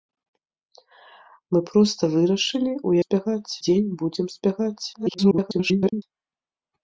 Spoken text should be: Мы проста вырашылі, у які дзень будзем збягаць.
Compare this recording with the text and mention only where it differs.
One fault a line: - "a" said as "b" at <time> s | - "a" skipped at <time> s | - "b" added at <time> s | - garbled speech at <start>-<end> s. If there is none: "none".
- "які" said as "збягаць" at 3.0 s
- garbled speech at 4.9-6.0 s